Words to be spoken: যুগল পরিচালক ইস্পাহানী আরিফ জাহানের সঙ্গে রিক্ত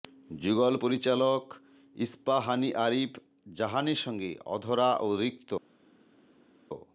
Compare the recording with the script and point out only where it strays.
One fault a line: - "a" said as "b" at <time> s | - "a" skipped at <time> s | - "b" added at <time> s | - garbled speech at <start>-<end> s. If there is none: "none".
- "অধরা ও" added at 4.5 s